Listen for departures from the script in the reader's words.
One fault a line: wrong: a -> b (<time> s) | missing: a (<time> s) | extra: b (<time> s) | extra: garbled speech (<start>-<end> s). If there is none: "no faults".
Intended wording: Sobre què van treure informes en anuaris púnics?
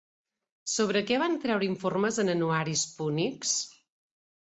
no faults